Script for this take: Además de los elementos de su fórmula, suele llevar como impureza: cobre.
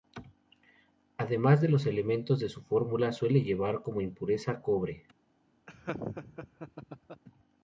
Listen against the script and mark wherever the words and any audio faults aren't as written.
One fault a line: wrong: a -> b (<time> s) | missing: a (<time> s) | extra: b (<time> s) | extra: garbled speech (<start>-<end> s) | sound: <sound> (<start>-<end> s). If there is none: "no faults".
sound: laugh (5.7-7.2 s)